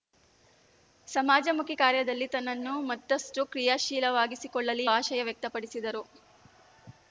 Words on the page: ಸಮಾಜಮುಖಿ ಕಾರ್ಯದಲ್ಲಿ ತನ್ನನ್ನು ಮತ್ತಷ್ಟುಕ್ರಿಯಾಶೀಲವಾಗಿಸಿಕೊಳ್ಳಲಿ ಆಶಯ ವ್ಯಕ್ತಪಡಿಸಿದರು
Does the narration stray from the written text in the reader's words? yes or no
no